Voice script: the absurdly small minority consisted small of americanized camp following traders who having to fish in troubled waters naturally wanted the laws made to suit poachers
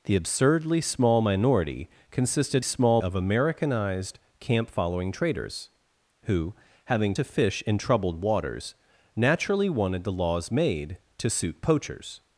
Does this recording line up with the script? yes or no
yes